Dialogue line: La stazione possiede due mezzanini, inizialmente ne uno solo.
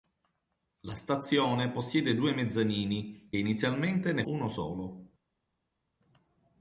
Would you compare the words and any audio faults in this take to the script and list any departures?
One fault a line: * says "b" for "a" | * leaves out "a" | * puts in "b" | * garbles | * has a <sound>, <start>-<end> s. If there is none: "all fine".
all fine